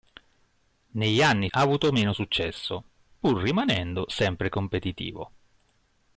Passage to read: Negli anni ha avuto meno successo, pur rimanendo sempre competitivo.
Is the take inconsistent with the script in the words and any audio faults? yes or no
no